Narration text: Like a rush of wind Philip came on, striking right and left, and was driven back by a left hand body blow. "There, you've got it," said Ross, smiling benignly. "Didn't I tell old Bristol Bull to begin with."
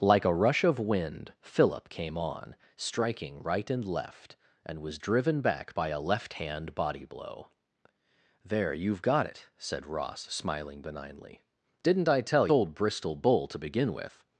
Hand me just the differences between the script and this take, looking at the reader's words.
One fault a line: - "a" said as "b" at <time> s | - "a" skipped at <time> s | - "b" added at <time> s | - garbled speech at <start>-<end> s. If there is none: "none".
none